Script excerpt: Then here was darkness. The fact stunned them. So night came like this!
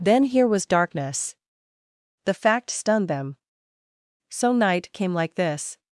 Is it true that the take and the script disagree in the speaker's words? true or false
false